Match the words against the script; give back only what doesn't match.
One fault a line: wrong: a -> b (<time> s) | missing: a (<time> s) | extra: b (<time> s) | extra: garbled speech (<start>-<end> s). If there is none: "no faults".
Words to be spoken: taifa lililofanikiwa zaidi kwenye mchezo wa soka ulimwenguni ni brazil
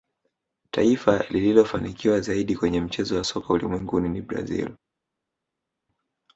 no faults